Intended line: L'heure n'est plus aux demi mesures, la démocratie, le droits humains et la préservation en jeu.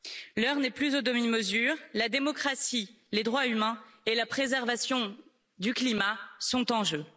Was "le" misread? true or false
true